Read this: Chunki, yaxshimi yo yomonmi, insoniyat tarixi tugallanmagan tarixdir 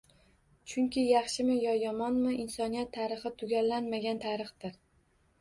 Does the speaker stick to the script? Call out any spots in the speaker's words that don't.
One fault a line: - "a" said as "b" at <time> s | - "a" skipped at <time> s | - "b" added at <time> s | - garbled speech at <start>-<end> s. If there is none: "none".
none